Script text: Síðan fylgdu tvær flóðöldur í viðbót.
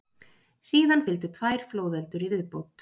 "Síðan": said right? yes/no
yes